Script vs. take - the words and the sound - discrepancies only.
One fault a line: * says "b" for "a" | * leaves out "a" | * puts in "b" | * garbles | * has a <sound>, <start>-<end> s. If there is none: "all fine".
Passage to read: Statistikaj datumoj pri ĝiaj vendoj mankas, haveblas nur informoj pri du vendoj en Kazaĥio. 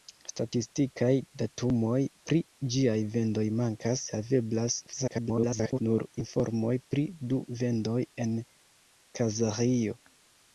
* garbles